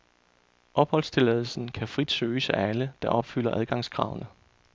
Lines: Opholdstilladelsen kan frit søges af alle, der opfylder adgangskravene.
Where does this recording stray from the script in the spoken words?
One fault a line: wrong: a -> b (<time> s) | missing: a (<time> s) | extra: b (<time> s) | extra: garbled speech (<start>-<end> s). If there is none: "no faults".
no faults